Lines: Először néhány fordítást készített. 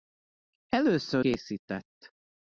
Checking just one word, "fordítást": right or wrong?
wrong